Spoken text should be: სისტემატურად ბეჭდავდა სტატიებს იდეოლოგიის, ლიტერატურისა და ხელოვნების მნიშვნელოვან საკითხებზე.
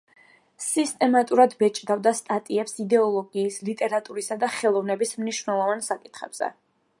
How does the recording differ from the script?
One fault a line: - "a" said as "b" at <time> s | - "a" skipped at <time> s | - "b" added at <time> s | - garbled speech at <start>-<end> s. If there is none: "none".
none